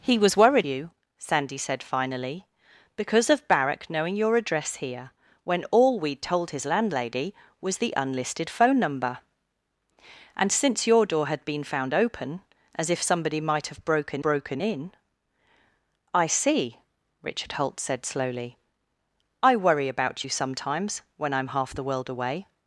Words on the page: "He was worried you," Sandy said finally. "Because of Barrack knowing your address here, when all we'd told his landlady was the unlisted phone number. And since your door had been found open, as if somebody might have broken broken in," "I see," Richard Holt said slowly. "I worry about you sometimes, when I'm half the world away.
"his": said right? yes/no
yes